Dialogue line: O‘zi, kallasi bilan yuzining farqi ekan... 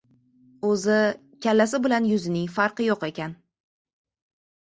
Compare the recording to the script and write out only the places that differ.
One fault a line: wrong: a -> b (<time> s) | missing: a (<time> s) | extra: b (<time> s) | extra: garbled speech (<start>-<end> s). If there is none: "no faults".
extra: yo‘q (2.9 s)